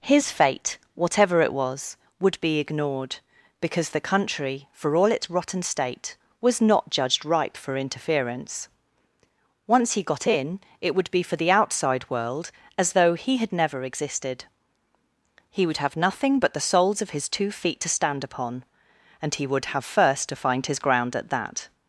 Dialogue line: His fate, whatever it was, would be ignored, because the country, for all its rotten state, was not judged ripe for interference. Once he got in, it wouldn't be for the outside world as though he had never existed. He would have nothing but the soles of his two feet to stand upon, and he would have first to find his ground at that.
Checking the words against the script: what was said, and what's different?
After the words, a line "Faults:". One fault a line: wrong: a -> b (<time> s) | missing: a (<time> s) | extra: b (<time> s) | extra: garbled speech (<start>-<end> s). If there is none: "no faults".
His fate, whatever it was, would be ignored, because the country, for all its rotten state, was not judged ripe for interference. Once he got in, it would be for the outside world as though he had never existed. He would have nothing but the soles of his two feet to stand upon, and he would have first to find his ground at that.
Faults:
wrong: wouldn't -> would (10.9 s)